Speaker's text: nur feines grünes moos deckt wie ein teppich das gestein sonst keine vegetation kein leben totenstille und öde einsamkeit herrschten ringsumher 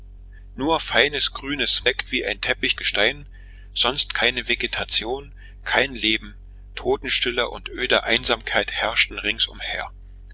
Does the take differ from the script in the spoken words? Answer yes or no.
yes